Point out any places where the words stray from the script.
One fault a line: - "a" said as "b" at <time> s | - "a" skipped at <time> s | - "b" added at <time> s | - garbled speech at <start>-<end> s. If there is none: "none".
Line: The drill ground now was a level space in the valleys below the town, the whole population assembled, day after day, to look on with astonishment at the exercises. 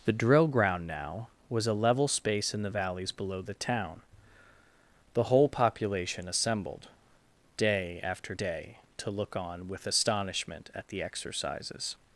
none